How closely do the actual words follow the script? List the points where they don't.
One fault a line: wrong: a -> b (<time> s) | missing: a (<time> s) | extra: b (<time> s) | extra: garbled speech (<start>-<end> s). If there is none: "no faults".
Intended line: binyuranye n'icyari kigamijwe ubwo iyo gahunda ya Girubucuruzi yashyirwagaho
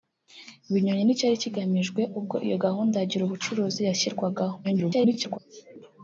extra: garbled speech (4.6-5.4 s)